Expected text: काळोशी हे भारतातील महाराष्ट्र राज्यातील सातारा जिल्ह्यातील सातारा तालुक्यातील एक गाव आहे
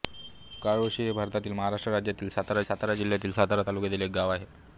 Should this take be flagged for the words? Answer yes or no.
yes